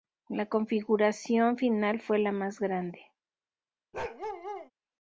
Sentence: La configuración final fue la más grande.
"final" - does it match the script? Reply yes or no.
yes